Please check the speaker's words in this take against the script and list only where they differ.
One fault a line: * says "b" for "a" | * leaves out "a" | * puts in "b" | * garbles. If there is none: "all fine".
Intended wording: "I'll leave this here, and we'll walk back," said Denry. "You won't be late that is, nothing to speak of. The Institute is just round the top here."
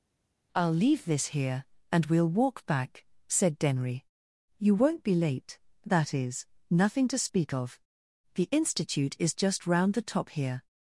all fine